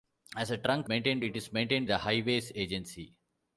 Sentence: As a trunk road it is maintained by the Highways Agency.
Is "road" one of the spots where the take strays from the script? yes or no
yes